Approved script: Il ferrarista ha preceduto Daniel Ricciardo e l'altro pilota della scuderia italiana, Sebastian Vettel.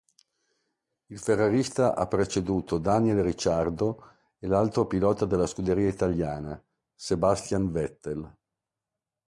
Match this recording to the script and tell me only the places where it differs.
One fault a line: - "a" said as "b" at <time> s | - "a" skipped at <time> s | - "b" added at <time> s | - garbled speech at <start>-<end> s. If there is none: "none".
none